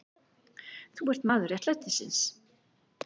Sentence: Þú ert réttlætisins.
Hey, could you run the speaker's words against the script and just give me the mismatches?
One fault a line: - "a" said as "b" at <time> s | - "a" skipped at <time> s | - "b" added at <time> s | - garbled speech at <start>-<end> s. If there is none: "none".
- "maður" added at 1.3 s